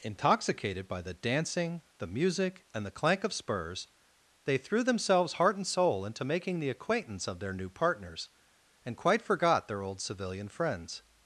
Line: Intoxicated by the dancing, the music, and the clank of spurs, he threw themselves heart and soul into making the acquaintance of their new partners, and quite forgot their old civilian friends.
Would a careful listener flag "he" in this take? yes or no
yes